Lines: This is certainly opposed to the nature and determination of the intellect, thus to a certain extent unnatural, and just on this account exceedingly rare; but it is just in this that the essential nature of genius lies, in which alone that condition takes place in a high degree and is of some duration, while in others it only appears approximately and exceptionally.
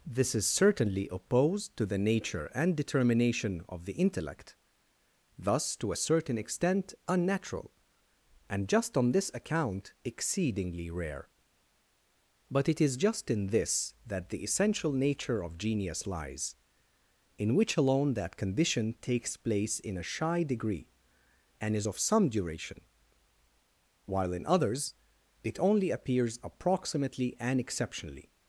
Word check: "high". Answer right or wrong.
wrong